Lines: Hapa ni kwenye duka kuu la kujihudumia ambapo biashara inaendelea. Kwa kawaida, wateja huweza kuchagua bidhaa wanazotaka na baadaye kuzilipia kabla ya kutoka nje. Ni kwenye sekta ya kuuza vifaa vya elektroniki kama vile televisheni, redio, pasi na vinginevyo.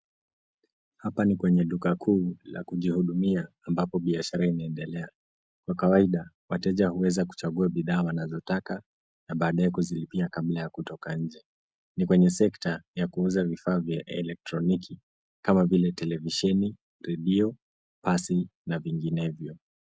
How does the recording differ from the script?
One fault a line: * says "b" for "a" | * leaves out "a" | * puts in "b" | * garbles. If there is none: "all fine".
all fine